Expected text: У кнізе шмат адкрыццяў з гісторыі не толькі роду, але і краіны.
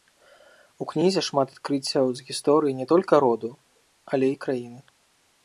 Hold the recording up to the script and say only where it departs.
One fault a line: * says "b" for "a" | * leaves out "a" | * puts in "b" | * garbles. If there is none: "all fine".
all fine